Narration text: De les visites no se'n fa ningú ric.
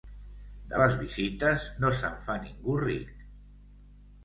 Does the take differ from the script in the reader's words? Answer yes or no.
no